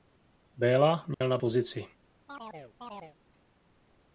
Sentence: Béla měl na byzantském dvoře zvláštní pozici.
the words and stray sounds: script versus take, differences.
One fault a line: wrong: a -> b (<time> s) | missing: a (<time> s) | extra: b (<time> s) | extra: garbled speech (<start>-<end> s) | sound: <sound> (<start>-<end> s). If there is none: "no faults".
sound: dropout (1.1-1.2 s)
missing: byzantském dvoře zvláštní (1.4 s)
sound: chirp (2.3-3.2 s)